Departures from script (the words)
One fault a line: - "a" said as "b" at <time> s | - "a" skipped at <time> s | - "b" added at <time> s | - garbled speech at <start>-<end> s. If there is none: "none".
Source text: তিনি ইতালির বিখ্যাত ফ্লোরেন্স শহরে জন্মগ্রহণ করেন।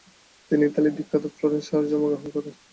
none